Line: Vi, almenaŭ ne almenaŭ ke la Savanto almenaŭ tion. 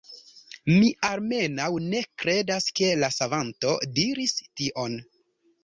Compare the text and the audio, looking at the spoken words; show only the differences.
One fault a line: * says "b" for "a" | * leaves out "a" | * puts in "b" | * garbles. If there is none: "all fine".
* says "Mi" for "Vi"
* says "kredas" for "almenaŭ"
* says "diris" for "almenaŭ"